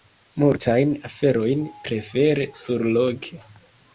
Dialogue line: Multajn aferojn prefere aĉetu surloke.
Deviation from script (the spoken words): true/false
true